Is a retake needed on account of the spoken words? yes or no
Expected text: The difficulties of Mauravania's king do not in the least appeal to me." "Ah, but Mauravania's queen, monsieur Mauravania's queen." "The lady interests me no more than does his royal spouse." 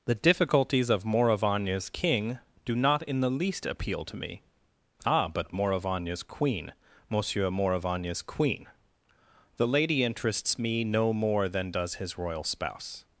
no